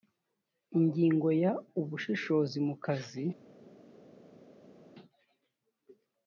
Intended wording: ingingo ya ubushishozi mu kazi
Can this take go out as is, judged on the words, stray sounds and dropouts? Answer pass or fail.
pass